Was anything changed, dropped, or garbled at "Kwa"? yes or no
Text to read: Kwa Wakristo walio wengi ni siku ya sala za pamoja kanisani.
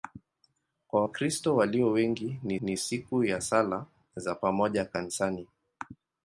no